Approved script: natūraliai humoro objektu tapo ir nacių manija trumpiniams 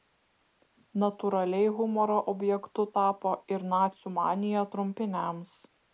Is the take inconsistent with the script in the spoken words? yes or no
no